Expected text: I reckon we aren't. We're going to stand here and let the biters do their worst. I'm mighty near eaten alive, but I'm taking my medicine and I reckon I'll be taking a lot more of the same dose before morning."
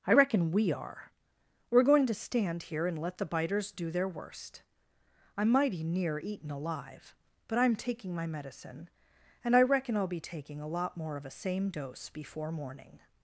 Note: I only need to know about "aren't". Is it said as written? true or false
false